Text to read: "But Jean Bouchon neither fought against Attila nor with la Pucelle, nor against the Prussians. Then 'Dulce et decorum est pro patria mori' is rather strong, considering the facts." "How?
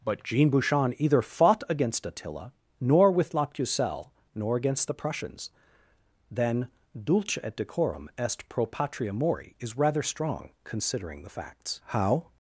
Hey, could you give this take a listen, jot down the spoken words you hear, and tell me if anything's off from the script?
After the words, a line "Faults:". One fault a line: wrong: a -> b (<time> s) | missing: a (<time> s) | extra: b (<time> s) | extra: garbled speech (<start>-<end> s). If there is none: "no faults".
"But Jean Bouchon either fought against Attila nor with la Pucelle, nor against the Prussians. Then 'Dulce et decorum est pro patria mori' is rather strong, considering the facts." "How?
Faults:
wrong: neither -> either (1.0 s)